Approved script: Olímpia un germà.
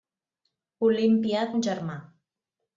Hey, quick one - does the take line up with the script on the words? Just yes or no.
yes